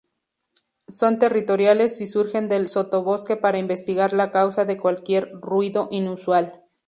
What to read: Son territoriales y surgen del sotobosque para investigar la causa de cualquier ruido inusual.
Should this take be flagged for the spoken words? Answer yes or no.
no